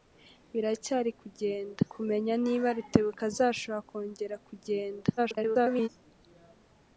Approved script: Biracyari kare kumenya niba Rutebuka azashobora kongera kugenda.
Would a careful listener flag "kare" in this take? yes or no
yes